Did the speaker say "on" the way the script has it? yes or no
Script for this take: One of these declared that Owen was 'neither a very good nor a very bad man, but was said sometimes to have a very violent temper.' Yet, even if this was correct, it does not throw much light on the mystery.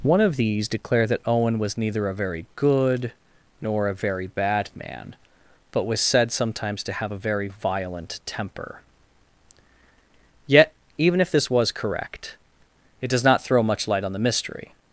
yes